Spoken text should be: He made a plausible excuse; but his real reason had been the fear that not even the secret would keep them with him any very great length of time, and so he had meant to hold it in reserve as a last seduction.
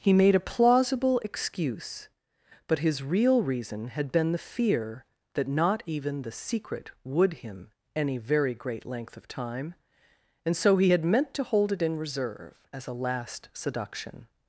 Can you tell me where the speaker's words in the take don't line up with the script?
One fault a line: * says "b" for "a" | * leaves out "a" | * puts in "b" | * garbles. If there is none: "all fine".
* leaves out "keep them with"